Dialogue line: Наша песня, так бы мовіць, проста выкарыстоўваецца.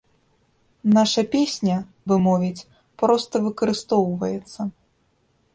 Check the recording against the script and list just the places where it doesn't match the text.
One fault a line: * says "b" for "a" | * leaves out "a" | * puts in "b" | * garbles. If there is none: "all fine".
* leaves out "так"